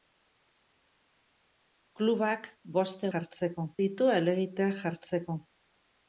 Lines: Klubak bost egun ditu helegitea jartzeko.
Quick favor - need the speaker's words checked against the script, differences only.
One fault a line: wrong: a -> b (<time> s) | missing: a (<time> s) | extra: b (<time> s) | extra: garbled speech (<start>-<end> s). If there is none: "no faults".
wrong: egun -> jartzeko (3.1 s)